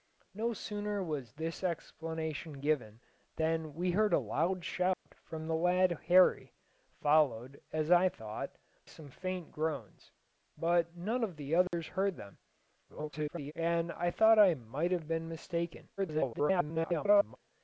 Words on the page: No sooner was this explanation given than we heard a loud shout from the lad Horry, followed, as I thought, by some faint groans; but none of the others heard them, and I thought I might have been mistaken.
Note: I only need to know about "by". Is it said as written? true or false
false